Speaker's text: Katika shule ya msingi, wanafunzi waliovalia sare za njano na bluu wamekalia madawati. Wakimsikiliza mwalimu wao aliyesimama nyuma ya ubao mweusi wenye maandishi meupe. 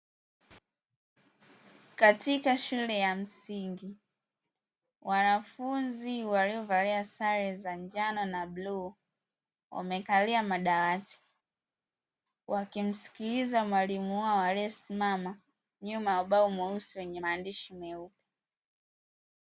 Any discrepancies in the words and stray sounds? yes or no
no